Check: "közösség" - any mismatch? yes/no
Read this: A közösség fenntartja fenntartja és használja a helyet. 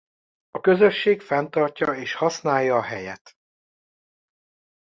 no